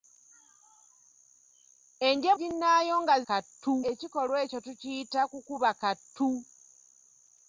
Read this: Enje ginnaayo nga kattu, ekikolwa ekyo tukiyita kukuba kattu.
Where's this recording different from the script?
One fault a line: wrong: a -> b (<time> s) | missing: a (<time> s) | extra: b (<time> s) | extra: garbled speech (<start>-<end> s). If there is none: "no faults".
no faults